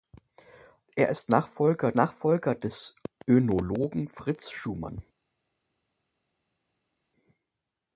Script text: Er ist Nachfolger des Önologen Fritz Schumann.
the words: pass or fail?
fail